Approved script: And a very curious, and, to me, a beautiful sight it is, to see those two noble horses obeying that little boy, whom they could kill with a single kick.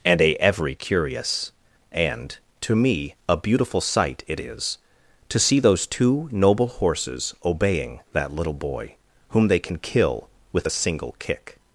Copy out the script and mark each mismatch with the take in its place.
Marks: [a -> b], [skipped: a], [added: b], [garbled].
And a [very -> every] curious, and, to me, a beautiful sight it is, to see those two noble horses obeying that little boy, whom they [could -> can] kill with a single kick.